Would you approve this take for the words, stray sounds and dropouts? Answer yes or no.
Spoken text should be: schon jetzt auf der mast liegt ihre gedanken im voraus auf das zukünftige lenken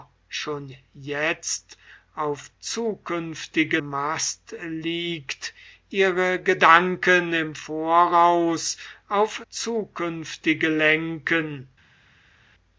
no